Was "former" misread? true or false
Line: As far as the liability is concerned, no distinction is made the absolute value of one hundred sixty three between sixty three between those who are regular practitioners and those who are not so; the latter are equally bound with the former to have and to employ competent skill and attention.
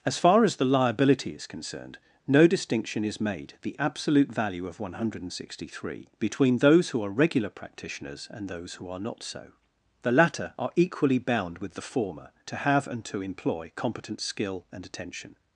false